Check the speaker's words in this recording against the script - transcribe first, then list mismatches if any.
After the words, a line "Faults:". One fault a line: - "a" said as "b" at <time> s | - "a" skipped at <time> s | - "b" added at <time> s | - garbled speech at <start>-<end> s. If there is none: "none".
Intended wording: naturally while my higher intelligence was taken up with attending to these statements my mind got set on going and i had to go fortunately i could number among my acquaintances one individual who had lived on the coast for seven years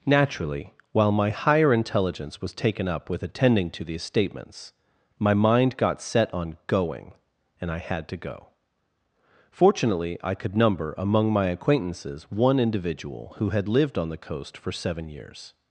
naturally while my higher intelligence was taken up with attending to these statements my mind got set on going and i had to go fortunately i could number among my acquaintances one individual who had lived on the coast for seven years
Faults:
none